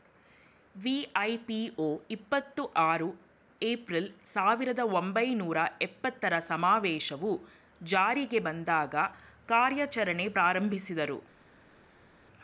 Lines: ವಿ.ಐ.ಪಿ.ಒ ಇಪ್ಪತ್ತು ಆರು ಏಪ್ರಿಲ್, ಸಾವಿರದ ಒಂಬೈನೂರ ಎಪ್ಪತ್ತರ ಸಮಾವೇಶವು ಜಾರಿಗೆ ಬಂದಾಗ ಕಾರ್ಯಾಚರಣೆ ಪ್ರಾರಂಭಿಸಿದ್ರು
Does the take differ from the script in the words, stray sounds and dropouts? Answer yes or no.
no